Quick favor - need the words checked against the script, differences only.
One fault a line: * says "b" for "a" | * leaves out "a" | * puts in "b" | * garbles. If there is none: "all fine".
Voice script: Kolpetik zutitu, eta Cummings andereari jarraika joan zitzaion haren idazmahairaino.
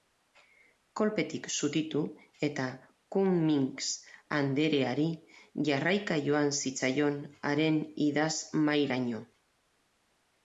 all fine